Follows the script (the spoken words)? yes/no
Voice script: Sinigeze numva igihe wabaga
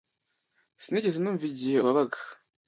yes